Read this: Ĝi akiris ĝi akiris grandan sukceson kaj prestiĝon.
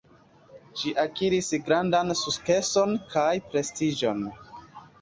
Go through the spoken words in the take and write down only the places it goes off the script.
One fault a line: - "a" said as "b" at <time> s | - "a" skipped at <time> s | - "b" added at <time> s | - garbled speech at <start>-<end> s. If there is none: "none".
- "ĝi akiris" skipped at 1.5 s